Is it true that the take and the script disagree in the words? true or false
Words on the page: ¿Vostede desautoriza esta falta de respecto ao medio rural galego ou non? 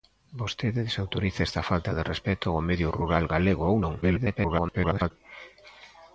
true